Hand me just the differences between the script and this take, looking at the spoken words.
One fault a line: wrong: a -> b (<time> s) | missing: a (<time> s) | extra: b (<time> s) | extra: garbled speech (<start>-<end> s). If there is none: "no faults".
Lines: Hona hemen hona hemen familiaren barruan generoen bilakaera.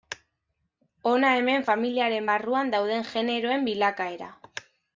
missing: hona hemen (1.7 s)
extra: dauden (2.8 s)